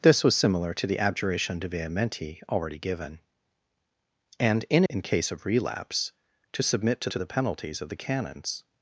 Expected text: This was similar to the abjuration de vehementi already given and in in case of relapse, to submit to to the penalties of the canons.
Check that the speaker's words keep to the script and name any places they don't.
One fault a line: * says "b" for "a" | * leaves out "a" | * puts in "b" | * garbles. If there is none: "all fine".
all fine